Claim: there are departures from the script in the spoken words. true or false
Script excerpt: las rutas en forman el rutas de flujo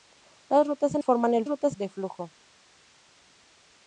false